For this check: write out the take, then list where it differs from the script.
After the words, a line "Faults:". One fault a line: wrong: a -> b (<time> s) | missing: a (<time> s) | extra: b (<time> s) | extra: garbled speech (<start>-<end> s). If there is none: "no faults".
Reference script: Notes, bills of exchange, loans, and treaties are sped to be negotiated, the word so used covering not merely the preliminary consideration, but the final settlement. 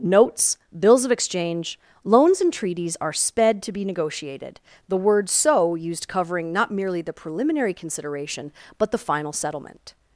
Notes, bills of exchange, loans, and treaties are sped to be negotiated, the word so used covering not merely the preliminary consideration, but the final settlement.
Faults:
no faults